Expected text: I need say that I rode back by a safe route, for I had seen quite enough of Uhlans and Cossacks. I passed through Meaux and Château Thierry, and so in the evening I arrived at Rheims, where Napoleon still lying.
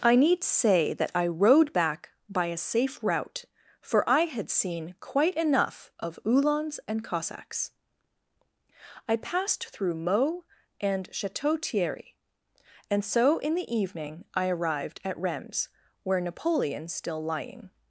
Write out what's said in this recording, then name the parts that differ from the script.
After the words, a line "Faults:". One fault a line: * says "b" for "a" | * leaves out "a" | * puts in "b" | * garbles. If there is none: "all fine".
I need say that I rode back by a safe route, for I had seen quite enough of Uhlans and Cossacks. I passed through Meaux and Château Thierry, and so in the evening I arrived at Rheims, where Napoleon still lying.
Faults:
all fine